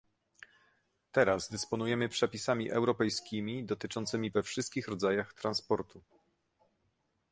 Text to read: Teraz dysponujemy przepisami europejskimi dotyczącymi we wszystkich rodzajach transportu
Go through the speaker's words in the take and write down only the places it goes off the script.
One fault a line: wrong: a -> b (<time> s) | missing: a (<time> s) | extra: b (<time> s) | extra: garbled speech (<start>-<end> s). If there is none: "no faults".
no faults